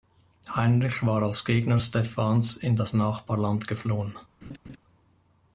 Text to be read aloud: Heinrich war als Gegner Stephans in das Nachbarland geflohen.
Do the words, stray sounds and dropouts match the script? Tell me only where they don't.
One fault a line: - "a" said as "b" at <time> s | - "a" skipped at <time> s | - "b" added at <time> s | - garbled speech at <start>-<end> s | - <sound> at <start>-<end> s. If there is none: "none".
- laugh at 4.4-4.8 s